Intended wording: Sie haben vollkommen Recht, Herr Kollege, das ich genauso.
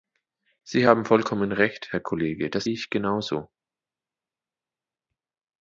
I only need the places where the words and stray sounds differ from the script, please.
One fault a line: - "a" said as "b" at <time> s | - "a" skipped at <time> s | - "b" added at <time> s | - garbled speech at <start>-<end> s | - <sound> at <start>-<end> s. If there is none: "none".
none